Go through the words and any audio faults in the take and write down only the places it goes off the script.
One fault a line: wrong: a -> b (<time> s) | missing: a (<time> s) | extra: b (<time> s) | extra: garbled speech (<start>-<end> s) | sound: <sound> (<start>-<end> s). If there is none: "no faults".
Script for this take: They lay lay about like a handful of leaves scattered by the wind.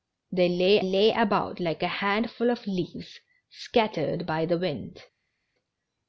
no faults